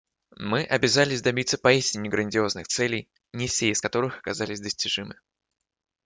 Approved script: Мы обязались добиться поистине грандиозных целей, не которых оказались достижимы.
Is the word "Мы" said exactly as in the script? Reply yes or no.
yes